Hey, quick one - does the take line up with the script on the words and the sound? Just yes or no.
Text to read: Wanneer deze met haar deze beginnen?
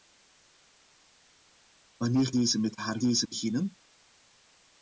yes